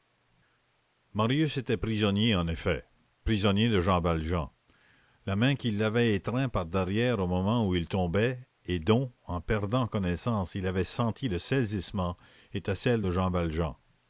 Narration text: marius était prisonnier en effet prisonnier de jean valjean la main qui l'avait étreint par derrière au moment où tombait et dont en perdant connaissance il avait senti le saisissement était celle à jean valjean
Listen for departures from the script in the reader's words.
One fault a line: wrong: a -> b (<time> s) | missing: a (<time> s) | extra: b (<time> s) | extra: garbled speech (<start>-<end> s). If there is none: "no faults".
extra: il (7.8 s)
wrong: à -> de (13.0 s)